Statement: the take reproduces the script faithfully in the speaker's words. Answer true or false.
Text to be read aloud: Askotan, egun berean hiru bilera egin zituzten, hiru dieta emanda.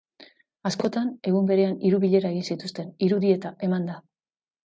true